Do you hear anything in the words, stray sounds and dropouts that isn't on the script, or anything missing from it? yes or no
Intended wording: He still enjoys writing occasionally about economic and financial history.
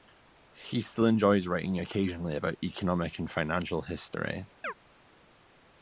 yes